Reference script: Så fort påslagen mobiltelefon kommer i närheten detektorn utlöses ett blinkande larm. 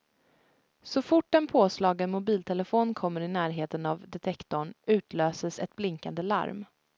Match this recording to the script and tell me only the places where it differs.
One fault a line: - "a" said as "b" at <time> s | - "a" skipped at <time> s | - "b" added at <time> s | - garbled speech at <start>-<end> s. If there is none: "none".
- "en" added at 1.4 s
- "av" added at 3.9 s